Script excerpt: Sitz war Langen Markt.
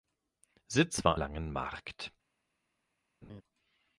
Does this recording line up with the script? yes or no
yes